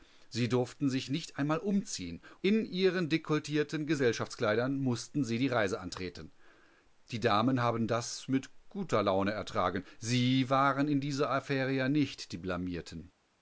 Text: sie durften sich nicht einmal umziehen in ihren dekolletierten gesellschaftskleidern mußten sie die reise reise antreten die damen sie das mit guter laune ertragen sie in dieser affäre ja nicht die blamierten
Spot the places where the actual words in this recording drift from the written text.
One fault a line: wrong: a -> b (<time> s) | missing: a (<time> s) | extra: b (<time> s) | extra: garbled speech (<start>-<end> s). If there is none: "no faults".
missing: reise (5.8 s)
wrong: sie -> haben (7.6 s)
extra: waren (10.5 s)